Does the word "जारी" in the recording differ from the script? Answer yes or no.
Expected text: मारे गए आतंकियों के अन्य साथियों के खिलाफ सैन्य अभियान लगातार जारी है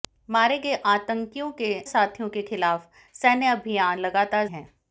yes